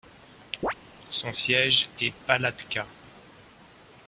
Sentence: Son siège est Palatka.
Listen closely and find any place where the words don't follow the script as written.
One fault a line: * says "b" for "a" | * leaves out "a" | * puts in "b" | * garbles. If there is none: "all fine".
all fine